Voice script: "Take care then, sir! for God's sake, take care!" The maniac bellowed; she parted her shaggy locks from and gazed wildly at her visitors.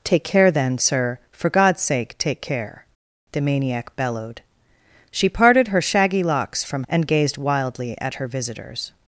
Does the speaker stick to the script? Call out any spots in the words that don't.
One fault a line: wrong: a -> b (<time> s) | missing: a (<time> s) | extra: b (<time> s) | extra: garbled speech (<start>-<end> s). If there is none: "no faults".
no faults